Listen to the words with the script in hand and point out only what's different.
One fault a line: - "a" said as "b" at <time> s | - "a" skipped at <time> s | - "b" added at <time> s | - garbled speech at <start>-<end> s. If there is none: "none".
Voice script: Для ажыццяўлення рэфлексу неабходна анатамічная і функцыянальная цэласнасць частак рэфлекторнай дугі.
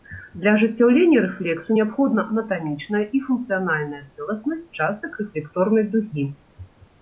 none